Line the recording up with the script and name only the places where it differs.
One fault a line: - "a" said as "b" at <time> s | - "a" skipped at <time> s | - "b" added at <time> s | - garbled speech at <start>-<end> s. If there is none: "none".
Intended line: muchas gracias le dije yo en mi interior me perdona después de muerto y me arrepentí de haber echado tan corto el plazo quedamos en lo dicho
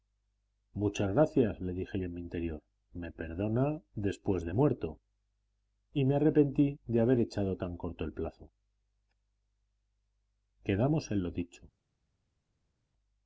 none